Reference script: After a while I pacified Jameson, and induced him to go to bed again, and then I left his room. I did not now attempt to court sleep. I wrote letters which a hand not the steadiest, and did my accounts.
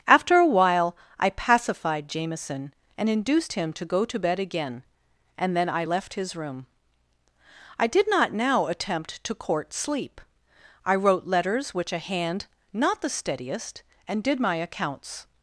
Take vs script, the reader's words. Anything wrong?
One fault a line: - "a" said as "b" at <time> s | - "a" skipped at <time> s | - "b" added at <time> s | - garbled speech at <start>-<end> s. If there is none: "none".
none